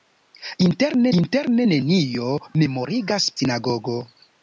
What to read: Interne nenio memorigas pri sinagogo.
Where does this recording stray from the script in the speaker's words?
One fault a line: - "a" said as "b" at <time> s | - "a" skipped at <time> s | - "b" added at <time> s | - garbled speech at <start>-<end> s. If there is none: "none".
- "interne" added at 1.2 s
- "pri" skipped at 3.3 s